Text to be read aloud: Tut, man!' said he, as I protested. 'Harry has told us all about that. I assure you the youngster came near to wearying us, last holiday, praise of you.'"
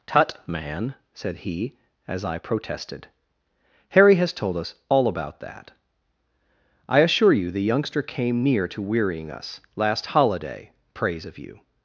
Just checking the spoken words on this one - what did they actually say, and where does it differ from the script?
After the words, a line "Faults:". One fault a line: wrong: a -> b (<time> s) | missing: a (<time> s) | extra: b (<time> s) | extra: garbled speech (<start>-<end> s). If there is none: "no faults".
Tut, man!' said he, as I protested. 'Harry has told us all about that. I assure you the youngster came near to wearying us, last holiday, praise of you.'"
Faults:
no faults